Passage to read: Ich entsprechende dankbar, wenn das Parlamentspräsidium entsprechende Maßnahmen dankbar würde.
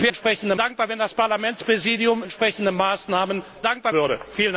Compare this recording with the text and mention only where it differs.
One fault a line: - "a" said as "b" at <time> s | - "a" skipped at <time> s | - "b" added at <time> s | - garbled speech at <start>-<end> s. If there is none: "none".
none